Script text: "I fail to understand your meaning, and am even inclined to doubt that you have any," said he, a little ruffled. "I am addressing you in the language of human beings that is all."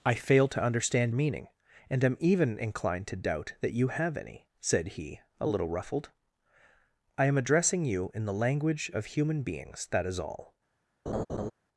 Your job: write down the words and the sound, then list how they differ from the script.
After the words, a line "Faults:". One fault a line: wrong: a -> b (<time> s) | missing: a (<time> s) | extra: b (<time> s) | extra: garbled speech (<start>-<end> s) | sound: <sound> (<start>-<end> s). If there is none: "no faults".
"I fail to understand meaning, and am even inclined to doubt that you have any," said he, a little ruffled. "I am addressing you in the language of human beings that is all."
Faults:
missing: your (1.1 s)
sound: laugh (11.1-11.5 s)